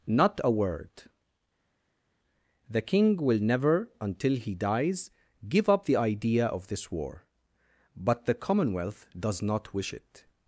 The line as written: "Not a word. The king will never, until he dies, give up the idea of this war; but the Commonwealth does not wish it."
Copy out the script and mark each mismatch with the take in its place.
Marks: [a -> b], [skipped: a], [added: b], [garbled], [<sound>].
"Not a word. The king will never, until he dies, give up the idea of this war; but the Commonwealth does not wish it."